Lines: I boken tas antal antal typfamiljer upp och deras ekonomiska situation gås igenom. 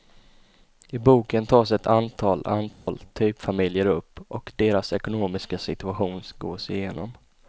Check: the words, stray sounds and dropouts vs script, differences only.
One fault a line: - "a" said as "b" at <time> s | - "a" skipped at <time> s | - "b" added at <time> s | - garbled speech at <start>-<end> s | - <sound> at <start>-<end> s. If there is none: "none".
- "ett" added at 1.7 s
- dropout at 2.7-2.9 s